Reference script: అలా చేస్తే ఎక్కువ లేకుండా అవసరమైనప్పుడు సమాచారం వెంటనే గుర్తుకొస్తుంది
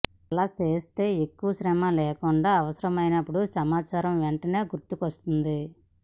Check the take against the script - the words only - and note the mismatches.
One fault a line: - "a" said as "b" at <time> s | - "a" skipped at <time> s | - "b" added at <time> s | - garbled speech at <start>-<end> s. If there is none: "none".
- "శ్రమ" added at 1.5 s